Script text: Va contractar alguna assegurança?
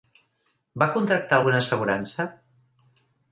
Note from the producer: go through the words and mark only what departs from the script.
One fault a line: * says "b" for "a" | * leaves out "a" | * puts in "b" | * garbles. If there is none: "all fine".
all fine